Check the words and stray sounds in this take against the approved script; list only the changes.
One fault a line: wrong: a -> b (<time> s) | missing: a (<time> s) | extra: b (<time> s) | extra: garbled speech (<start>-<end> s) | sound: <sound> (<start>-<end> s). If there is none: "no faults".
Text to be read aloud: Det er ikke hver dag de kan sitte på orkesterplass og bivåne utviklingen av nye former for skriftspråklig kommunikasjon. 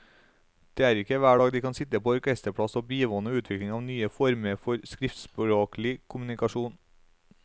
no faults